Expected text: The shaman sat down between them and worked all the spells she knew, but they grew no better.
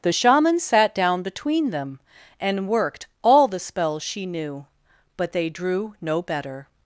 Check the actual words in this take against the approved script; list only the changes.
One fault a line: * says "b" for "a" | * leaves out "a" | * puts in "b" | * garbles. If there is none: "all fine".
* says "drew" for "grew"